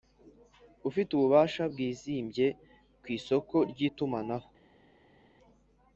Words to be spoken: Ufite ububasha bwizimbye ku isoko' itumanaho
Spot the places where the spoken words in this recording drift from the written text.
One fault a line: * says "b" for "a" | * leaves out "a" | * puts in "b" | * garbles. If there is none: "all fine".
* puts in "ry"